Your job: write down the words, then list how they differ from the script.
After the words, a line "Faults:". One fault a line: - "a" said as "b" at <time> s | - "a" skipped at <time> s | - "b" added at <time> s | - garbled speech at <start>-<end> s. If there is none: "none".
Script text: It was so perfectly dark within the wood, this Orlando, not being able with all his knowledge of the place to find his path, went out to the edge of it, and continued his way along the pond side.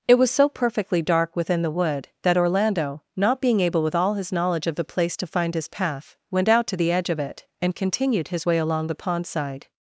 It was so perfectly dark within the wood, that Orlando, not being able with all his knowledge of the place to find his path, went out to the edge of it, and continued his way along the pond side.
Faults:
- "this" said as "that" at 2.2 s